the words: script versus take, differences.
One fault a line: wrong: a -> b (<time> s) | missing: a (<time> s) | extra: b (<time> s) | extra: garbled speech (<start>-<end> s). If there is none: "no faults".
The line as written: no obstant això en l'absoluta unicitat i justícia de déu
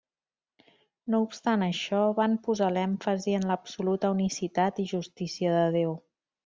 extra: van posar l'èmfasi (2.2 s)